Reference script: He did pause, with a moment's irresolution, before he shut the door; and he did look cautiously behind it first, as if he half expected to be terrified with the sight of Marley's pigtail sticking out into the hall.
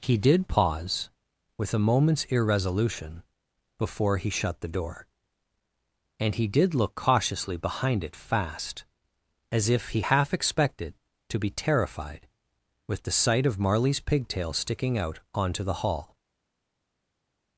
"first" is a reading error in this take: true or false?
true